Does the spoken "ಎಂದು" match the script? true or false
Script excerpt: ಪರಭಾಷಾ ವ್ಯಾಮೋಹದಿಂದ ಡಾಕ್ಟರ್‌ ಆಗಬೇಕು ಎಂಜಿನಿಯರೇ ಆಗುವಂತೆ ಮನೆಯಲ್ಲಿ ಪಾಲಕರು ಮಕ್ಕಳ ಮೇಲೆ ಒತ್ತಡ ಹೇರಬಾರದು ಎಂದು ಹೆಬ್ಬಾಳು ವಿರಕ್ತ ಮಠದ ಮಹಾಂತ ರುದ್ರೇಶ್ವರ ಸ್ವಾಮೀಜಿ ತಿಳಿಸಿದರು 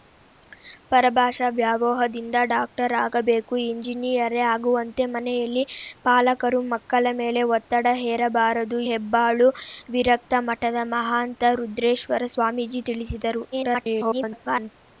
false